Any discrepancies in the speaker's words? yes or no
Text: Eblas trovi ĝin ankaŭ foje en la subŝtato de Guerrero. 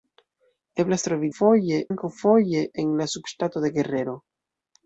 yes